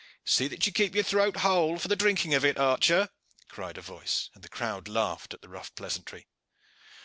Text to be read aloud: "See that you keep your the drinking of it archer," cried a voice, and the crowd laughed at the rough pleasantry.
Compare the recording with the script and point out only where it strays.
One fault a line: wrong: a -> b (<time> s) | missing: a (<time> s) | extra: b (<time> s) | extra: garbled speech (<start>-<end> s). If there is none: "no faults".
extra: throat whole for (1.0 s)